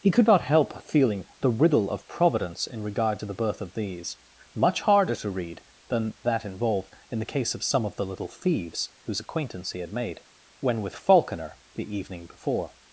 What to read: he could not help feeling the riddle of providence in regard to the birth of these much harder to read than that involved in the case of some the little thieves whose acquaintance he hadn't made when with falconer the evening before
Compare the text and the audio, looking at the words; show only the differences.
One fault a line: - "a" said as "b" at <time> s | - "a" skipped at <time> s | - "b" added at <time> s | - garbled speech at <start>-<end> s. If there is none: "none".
- "of" added at 7.8 s
- "hadn't" said as "had" at 9.8 s